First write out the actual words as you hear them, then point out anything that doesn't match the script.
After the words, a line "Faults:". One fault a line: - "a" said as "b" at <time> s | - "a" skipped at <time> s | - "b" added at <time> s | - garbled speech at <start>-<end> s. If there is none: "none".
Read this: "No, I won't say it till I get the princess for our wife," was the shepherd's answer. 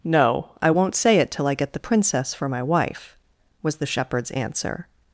"No, I won't say it till I get the princess for my wife," was the shepherd's answer.
Faults:
- "our" said as "my" at 2.5 s